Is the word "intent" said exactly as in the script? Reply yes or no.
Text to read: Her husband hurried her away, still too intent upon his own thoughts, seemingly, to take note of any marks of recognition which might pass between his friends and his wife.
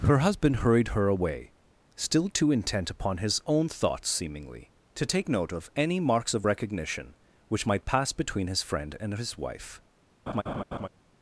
yes